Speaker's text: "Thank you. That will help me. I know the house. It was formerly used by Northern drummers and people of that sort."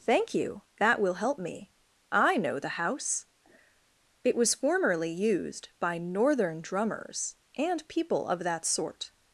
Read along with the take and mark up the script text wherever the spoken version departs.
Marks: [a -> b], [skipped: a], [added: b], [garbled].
"Thank you. That will help me. I know the house. It was formerly used by Northern drummers and people of that sort."